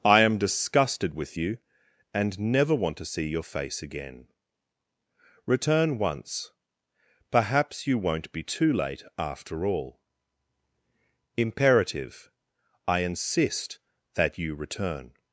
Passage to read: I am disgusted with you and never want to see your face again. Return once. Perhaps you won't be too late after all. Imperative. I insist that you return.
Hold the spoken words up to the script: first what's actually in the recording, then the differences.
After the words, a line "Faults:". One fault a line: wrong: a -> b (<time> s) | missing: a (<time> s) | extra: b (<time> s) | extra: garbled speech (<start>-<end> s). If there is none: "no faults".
I am disgusted with you and never want to see your face again. Return once. Perhaps you won't be too late after all. Imperative. I insist that you return.
Faults:
no faults